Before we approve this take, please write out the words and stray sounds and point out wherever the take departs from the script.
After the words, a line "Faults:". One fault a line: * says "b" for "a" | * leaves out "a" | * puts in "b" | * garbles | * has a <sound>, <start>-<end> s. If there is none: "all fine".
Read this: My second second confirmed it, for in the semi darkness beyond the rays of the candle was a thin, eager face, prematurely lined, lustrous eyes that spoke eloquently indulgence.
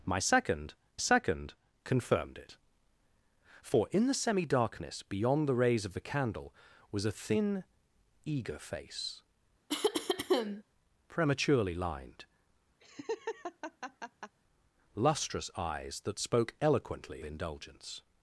My second second confirmed it, for in the semi darkness beyond the rays of the candle was a thin, eager face, prematurely lined, lustrous eyes that spoke eloquently indulgence.
Faults:
* has a cough, 9.7-10.6 s
* has a laugh, 12.8-14.4 s